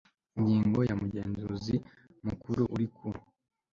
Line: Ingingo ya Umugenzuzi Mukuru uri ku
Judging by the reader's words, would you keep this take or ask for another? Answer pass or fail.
pass